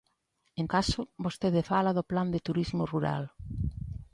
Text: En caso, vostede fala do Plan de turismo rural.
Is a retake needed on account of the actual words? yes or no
no